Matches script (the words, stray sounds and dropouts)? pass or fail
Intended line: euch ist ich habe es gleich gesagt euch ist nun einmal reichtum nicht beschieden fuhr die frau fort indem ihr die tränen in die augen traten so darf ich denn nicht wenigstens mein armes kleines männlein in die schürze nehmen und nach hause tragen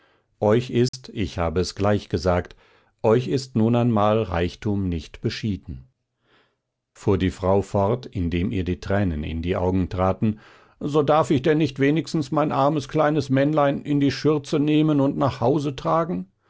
fail